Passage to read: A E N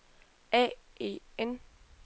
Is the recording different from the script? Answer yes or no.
no